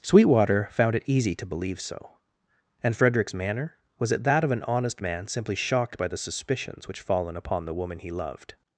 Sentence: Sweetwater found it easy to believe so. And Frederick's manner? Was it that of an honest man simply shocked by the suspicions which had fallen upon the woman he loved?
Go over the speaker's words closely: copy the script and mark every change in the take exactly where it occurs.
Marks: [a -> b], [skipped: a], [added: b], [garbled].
Sweetwater found it easy to believe so. And Frederick's manner? Was it that of an honest man simply shocked by the suspicions which [skipped: had] fallen upon the woman he loved?